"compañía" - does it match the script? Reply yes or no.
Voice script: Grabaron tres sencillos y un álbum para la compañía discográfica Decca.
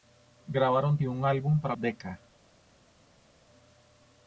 no